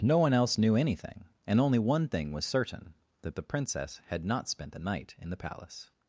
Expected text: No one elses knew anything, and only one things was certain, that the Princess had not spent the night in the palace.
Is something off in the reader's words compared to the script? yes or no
yes